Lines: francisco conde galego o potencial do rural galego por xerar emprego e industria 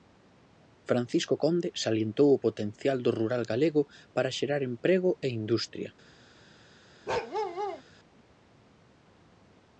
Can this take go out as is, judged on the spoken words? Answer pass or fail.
fail